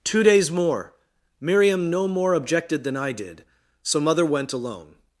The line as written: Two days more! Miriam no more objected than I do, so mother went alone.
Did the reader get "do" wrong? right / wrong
wrong